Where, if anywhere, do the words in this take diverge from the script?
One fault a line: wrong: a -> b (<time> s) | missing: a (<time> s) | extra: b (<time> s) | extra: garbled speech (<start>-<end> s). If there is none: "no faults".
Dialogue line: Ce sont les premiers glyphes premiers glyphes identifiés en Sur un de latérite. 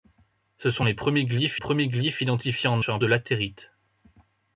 no faults